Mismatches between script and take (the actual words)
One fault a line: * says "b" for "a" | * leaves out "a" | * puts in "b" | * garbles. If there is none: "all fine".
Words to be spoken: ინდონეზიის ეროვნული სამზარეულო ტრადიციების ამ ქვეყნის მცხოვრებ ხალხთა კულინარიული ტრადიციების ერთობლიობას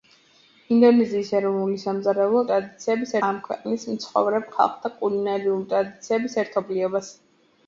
all fine